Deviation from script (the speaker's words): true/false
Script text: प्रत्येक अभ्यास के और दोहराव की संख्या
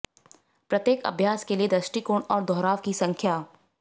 true